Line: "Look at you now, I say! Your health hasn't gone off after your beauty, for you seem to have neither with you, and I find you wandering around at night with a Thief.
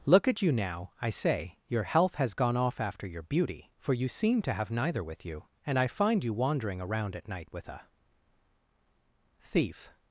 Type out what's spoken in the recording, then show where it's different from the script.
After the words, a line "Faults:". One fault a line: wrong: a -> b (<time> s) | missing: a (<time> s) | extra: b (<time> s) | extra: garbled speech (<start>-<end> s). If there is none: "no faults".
"Look at you now, I say! Your health has gone off after your beauty, for you seem to have neither with you, and I find you wandering around at night with a Thief.
Faults:
wrong: hasn't -> has (2.1 s)